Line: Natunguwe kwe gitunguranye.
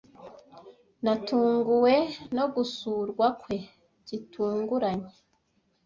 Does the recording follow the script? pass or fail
fail